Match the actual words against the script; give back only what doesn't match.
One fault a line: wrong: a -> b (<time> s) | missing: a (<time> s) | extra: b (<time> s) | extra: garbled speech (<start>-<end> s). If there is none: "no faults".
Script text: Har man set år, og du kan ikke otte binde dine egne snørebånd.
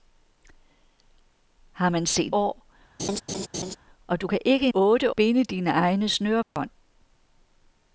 no faults